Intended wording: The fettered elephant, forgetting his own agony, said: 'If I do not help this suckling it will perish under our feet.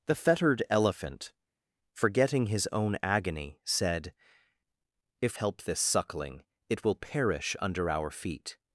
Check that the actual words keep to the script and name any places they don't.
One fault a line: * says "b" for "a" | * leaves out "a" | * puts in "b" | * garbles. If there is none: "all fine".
* leaves out "I do not"